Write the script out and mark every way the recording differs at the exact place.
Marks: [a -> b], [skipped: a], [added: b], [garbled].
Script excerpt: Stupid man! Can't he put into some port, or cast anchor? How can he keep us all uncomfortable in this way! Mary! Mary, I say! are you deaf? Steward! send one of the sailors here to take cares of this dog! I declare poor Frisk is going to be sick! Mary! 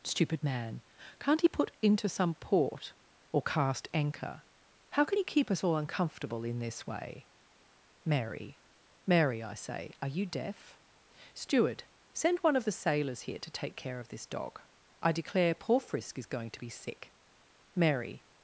Stupid man! Can't he put into some port, or cast anchor? How can he keep us all uncomfortable in this way! Mary! Mary, I say! are you deaf? Steward! send one of the sailors here to take [cares -> care] of this dog! I declare poor Frisk is going to be sick! Mary!